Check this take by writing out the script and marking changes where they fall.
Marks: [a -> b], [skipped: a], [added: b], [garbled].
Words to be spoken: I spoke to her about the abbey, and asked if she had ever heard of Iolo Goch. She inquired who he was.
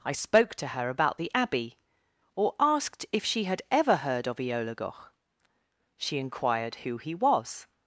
I spoke to her about the abbey, [and -> or] asked if she had ever heard of Iolo Goch. She inquired who he was.